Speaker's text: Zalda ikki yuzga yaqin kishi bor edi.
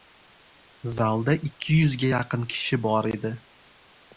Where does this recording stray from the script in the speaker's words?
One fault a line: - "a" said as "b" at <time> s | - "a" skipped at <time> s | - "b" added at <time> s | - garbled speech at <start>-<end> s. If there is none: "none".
none